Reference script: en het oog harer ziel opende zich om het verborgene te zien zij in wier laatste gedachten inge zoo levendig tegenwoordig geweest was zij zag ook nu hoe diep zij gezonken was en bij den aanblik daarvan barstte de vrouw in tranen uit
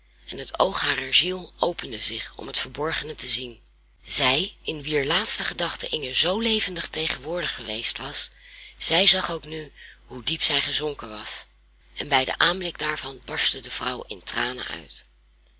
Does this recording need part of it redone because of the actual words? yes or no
no